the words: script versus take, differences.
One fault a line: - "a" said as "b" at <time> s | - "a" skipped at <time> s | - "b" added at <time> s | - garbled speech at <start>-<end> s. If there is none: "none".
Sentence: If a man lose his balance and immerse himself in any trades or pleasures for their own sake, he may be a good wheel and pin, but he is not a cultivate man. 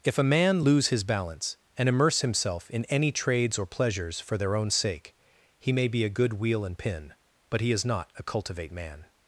none